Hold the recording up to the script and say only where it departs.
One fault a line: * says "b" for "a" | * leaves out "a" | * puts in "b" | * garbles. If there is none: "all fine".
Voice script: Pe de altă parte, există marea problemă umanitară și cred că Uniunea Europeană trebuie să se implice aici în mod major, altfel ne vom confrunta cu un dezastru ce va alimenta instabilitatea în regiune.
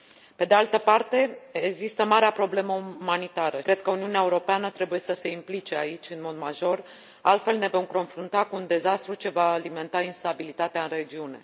* leaves out "și"